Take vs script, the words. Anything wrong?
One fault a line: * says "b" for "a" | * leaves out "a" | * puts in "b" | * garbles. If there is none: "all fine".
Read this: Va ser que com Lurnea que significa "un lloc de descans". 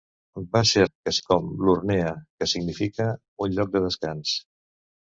all fine